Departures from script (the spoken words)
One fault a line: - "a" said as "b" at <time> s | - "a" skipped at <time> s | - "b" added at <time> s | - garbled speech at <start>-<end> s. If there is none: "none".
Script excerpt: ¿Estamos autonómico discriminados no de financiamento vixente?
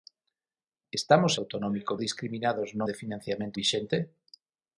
none